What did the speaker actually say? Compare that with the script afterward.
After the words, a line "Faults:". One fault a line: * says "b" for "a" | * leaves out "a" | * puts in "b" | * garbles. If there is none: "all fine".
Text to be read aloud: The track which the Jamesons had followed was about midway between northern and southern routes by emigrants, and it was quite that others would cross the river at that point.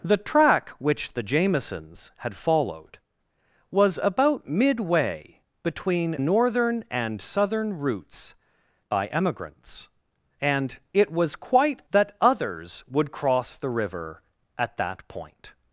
The track which the Jamesons had followed was about midway between northern and southern routes by emigrants, and it was quite that others would cross the river at that point.
Faults:
all fine